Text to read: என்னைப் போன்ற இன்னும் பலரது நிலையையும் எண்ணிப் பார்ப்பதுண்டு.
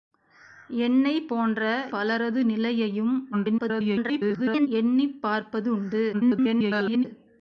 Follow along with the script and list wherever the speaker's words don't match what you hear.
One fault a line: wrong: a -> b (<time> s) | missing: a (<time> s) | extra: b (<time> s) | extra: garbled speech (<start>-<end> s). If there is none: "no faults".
missing: இன்னும் (1.6 s)
extra: garbled speech (3.3-4.7 s)
extra: garbled speech (6.1-7.0 s)